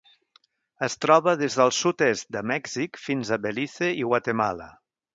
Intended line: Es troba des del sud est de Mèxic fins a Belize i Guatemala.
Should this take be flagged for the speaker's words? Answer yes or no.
no